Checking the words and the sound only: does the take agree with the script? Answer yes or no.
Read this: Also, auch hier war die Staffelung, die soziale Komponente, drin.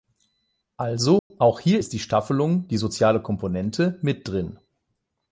no